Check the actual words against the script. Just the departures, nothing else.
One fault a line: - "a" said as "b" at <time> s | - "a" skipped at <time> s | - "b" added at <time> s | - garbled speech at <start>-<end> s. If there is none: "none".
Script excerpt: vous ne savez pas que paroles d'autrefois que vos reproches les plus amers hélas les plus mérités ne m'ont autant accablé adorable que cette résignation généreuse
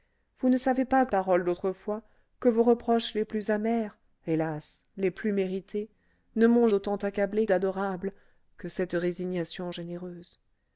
none